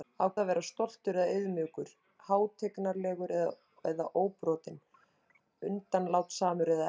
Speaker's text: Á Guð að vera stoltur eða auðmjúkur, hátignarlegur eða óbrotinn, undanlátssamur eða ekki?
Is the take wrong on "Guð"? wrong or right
wrong